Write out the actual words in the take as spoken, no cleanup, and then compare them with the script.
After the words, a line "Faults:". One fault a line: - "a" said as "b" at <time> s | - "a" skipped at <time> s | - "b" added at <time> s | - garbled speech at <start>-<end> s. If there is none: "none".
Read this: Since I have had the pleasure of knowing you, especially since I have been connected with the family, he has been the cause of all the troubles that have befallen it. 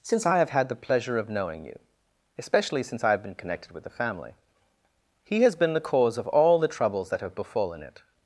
Since I have had the pleasure of knowing you, especially since I have been connected with the family, he has been the cause of all the troubles that have befallen it.
Faults:
none